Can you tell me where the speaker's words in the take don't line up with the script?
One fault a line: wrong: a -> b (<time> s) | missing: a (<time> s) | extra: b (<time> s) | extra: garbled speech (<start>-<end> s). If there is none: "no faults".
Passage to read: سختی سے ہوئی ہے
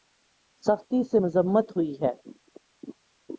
extra: مذمت (1.2 s)